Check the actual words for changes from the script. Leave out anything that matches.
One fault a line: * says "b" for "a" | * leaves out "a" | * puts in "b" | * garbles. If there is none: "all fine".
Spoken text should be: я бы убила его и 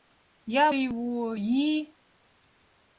* leaves out "бы убила"